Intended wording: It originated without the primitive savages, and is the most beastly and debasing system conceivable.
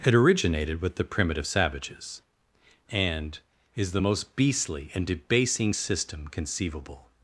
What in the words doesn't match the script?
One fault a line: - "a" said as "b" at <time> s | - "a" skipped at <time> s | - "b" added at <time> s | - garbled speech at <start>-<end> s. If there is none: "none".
- "without" said as "with" at 0.8 s